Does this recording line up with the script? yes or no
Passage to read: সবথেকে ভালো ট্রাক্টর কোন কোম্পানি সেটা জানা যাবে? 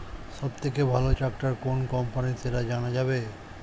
yes